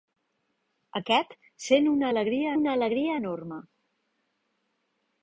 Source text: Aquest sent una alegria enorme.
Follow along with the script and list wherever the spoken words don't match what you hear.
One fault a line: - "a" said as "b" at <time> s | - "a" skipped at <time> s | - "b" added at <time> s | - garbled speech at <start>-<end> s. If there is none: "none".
- "una alegria" added at 2.6 s